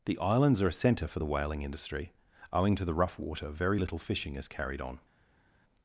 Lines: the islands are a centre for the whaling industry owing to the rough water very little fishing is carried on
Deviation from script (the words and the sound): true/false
false